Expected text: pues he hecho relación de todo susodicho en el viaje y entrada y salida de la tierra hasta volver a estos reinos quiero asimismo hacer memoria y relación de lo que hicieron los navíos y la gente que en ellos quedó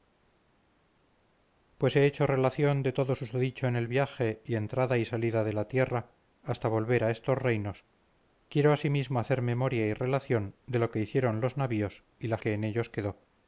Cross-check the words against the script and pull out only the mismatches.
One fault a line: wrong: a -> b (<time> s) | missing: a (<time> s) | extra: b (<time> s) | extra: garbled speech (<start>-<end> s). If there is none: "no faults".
missing: gente (12.4 s)